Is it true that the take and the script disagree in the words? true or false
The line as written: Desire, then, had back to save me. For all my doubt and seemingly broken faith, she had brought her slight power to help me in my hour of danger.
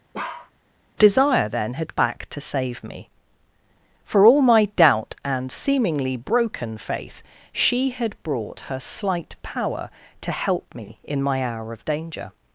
false